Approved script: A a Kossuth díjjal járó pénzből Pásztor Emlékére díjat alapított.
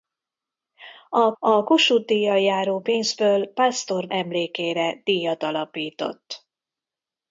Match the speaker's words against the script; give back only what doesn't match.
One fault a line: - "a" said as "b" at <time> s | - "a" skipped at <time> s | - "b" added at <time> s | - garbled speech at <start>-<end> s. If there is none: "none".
none